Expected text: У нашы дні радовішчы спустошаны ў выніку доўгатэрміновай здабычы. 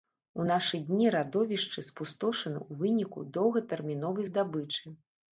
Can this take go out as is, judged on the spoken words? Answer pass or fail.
pass